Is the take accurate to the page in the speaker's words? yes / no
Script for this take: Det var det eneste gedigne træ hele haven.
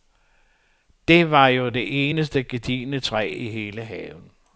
no